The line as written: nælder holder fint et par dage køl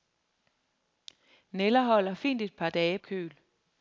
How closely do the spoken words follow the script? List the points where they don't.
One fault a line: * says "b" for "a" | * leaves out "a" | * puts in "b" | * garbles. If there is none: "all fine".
all fine